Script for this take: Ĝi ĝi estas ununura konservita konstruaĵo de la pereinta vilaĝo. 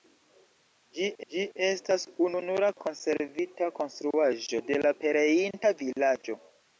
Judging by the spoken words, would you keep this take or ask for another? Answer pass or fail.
pass